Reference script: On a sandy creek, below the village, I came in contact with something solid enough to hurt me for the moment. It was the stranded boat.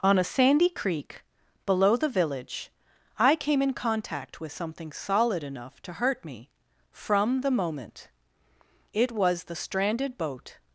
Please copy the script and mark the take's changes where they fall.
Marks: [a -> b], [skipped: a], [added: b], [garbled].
On a sandy creek, below the village, I came in contact with something solid enough to hurt me [for -> from] the moment. It was the stranded boat.